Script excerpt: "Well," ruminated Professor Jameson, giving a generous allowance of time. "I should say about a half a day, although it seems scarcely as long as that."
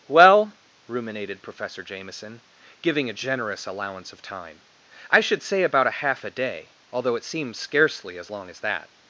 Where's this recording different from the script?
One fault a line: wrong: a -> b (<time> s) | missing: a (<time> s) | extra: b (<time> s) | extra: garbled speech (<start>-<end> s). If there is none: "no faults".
no faults